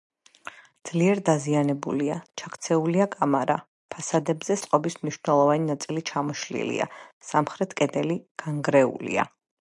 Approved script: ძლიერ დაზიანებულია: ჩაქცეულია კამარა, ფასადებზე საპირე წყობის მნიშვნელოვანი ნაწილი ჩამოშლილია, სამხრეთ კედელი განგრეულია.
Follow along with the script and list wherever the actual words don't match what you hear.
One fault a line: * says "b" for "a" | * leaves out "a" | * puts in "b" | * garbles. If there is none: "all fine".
* leaves out "საპირე"